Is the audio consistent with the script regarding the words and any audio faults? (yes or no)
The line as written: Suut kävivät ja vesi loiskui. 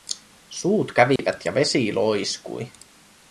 no